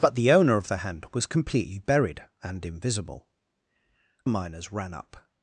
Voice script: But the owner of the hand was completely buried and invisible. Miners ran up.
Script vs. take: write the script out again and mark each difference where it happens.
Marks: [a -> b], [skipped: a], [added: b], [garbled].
But the owner of the hand was completely buried and invisible. Miners ran up.